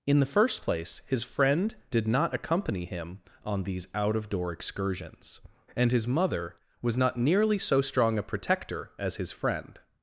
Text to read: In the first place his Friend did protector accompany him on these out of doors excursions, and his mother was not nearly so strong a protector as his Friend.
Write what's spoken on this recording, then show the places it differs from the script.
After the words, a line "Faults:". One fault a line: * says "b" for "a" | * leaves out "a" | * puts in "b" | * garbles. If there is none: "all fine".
In the first place his Friend did not accompany him on these out of door excursions, and his mother was not nearly so strong a protector as his Friend.
Faults:
* says "not" for "protector"
* says "door" for "doors"